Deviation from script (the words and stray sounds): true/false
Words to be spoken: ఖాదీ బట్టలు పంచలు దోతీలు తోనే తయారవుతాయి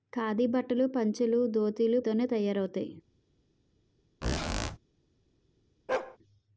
true